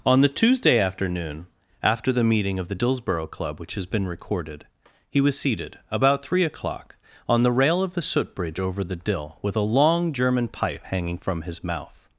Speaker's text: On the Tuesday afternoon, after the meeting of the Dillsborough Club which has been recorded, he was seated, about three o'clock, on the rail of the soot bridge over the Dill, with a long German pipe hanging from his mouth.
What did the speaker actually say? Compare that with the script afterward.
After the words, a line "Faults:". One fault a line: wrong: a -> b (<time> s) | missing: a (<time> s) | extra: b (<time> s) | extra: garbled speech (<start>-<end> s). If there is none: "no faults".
On the Tuesday afternoon, after the meeting of the Dillsborough Club which has been recorded, he was seated, about three o'clock, on the rail of the soot bridge over the Dill, with a long German pipe hanging from his mouth.
Faults:
no faults